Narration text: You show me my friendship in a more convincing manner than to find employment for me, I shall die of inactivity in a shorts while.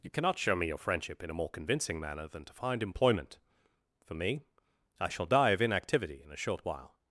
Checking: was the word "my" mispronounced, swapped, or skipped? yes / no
yes